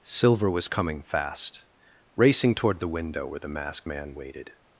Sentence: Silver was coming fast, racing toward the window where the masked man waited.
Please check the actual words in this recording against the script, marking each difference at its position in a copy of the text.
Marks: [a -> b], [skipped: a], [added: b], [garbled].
Silver was coming fast, racing toward the window where the masked man waited.